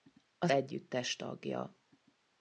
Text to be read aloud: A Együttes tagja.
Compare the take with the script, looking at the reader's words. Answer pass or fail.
pass